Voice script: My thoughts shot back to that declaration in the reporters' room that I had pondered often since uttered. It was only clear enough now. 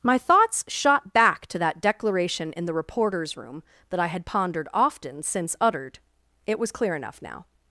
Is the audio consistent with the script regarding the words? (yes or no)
no